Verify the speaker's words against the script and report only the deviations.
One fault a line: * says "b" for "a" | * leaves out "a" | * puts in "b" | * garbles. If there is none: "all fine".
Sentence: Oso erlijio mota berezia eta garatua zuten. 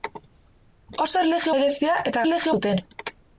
* leaves out "mota"
* says "erlijio" for "garatua"